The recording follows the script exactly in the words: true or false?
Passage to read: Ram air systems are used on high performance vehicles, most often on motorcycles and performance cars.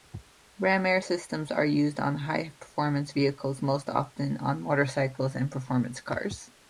true